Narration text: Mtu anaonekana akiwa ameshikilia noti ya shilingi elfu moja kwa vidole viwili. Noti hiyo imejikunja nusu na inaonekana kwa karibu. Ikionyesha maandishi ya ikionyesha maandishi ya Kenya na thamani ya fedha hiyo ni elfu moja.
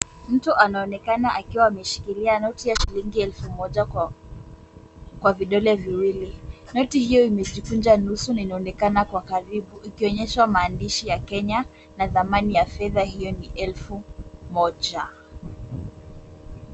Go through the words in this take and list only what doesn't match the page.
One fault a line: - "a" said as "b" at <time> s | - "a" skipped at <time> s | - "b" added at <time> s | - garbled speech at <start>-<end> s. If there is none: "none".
- "ikionyesha maandishi ya" skipped at 11.2 s